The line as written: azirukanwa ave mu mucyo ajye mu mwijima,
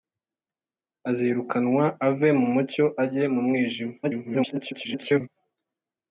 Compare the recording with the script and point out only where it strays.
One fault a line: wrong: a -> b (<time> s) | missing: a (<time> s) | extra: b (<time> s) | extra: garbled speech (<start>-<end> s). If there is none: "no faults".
extra: garbled speech (4.0-5.3 s)